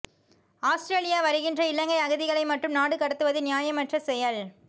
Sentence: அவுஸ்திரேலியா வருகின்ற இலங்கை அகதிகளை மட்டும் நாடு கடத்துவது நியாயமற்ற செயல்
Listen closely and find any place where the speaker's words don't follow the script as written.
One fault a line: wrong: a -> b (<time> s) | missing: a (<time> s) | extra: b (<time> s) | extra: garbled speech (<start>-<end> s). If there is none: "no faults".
no faults